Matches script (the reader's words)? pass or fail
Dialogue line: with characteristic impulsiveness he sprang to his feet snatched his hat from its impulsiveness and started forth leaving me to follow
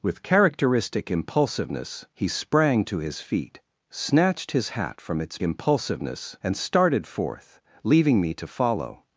pass